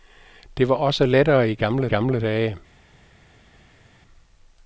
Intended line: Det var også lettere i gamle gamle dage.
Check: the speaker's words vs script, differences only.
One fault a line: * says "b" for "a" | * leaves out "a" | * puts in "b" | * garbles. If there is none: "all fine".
all fine